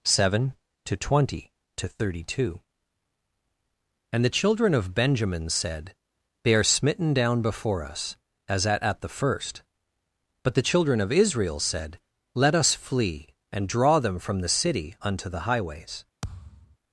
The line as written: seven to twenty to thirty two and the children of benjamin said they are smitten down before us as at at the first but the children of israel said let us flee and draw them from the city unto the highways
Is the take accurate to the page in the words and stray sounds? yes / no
no